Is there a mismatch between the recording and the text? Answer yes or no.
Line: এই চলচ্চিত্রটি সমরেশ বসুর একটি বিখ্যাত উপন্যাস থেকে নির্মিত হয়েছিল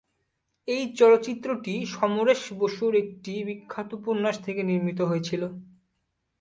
no